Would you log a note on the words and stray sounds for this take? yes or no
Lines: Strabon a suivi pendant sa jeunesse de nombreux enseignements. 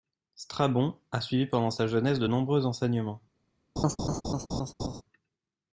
yes